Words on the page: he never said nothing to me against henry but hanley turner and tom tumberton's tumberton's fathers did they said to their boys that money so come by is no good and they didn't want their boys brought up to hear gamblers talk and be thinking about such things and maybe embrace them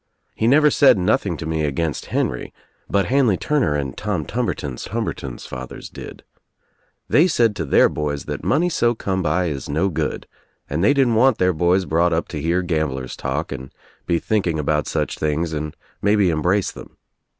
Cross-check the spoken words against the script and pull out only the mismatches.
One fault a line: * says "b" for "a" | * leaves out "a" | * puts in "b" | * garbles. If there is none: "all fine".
all fine